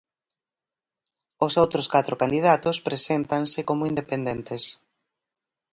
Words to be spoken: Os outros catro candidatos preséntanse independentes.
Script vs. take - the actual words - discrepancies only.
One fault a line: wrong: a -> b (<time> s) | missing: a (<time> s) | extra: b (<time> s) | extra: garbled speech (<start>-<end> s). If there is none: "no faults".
extra: como (3.7 s)